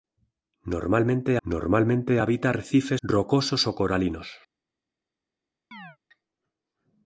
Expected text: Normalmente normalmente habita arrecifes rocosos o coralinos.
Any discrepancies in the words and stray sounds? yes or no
yes